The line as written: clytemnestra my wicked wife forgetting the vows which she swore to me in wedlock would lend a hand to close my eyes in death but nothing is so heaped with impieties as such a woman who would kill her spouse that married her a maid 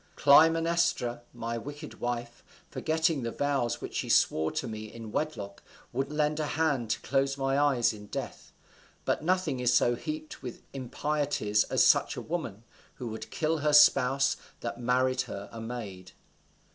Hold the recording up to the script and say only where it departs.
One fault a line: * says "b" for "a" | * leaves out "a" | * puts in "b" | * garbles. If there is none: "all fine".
all fine